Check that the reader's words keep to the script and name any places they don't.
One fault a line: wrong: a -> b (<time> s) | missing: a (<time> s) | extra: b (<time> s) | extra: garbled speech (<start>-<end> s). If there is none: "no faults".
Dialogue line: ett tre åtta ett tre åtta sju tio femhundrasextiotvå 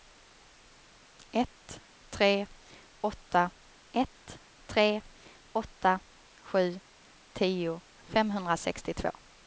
no faults